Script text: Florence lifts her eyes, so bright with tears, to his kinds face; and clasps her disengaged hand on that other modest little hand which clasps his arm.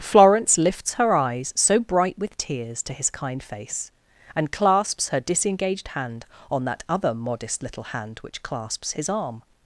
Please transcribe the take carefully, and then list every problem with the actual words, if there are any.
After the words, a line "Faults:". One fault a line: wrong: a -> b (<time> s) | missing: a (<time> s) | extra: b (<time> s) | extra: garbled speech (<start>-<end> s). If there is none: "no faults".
Florence lifts her eyes, so bright with tears, to his kind face; and clasps her disengaged hand on that other modest little hand which clasps his arm.
Faults:
wrong: kinds -> kind (3.1 s)